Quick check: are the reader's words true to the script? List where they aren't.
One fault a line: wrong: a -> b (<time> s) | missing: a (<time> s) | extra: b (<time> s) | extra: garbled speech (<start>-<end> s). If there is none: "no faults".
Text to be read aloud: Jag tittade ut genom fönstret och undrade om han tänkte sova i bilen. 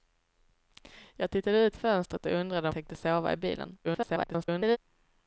missing: genom (1.8 s)
missing: han (2.7 s)
extra: garbled speech (3.8-4.8 s)